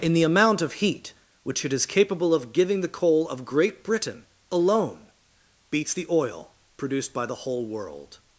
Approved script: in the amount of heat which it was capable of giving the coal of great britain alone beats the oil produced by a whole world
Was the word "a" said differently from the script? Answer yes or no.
yes